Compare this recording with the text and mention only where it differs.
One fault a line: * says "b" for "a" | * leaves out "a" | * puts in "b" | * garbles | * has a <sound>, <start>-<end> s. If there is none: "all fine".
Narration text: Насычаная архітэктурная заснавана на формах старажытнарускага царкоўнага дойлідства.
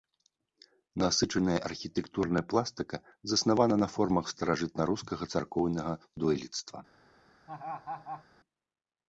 * puts in "пластыка"
* has a laugh, 7.5-8.2 s